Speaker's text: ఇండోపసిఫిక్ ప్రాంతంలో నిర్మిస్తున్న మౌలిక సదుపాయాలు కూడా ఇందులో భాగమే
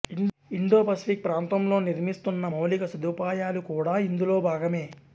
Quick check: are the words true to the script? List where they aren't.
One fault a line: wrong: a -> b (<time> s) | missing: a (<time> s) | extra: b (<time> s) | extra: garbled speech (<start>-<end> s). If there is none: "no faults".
no faults